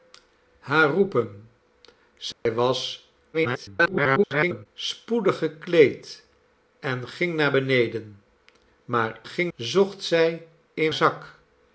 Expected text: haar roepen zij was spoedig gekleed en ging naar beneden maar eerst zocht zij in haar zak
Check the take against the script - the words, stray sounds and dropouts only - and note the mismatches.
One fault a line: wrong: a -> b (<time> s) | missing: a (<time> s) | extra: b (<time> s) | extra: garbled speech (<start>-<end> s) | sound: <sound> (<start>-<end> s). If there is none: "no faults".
sound: dropout (2.3-2.5 s)
extra: garbled speech (3.3-4.7 s)
wrong: eerst -> ging (9.3 s)
missing: haar (10.9 s)